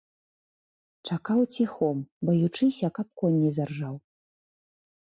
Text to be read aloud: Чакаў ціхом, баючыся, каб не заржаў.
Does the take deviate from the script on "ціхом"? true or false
false